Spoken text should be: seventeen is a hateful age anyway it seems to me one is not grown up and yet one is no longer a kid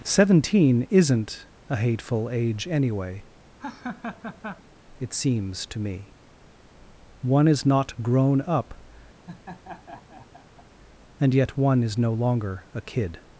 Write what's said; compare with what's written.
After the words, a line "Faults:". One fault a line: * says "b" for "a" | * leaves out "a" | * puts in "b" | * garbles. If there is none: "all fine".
seventeen isn't a hateful age anyway it seems to me one is not grown up and yet one is no longer a kid
Faults:
* says "isn't" for "is"